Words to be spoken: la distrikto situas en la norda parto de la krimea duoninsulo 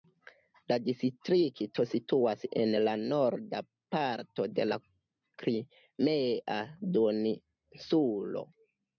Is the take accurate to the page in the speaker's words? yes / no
yes